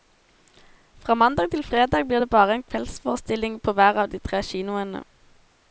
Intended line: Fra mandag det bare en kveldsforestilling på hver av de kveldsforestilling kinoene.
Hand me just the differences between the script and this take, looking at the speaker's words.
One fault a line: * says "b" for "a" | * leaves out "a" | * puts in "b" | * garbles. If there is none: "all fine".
* puts in "til fredag blir"
* says "tre" for "kveldsforestilling"